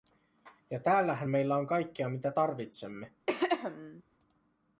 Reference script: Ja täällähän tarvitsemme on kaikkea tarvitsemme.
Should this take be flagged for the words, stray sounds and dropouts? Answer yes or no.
yes